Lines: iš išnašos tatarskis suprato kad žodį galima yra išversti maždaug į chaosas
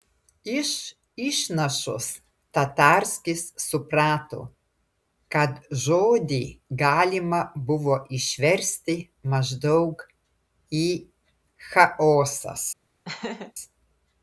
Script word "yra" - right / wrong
wrong